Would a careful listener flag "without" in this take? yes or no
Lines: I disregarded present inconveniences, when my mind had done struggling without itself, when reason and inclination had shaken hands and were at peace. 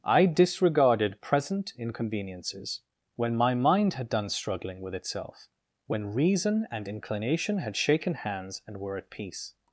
yes